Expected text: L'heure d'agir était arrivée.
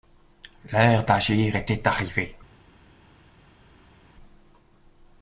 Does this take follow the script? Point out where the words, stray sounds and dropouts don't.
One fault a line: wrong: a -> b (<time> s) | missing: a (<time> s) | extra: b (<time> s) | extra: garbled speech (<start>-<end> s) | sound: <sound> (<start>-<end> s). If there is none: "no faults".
no faults